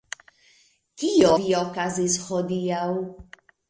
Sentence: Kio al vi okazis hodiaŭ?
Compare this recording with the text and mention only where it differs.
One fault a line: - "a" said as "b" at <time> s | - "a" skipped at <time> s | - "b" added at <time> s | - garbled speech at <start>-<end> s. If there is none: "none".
- "al" skipped at 1.3 s